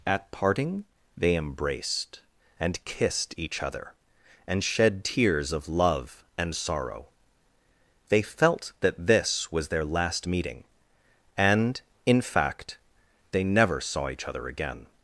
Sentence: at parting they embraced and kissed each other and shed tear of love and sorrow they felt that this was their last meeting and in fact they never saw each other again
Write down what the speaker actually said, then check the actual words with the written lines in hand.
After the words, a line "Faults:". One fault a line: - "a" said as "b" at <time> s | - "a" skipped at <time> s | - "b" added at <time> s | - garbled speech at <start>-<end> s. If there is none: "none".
at parting they embraced and kissed each other and shed tears of love and sorrow they felt that this was their last meeting and in fact they never saw each other again
Faults:
- "tear" said as "tears" at 5.0 s